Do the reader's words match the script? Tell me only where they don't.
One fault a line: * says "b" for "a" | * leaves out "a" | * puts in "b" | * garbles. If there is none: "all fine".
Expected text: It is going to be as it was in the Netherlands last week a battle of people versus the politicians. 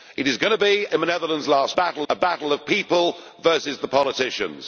* leaves out "as it was"
* says "battle" for "week"